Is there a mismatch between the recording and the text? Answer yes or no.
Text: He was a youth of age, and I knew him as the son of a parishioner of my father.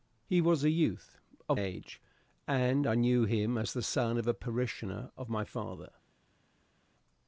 no